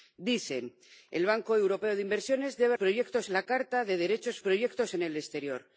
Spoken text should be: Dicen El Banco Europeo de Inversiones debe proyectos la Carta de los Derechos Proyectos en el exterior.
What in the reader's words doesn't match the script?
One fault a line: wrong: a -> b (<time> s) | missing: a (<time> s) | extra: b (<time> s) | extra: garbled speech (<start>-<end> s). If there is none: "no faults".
no faults